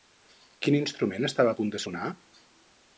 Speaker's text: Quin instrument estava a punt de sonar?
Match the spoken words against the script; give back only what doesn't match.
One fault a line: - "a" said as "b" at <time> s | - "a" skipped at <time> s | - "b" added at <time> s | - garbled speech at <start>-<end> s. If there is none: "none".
none